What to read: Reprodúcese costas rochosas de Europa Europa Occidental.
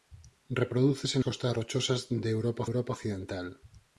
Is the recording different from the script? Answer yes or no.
no